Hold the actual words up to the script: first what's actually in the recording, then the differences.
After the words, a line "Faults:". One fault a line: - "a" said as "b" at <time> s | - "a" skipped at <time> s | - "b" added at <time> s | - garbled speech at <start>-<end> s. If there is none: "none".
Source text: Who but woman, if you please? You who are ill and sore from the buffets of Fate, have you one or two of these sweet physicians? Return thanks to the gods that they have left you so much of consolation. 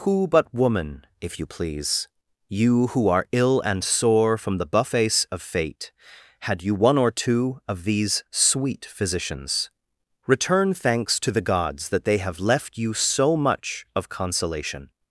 Who but woman, if you please? You who are ill and sore from the buffets of Fate, had you one or two of these sweet physicians? Return thanks to the gods that they have left you so much of consolation.
Faults:
- "have" said as "had" at 6.4 s